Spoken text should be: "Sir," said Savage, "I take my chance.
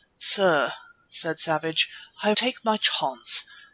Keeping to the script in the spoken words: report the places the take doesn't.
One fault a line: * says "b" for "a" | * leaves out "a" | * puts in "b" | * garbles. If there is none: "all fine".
all fine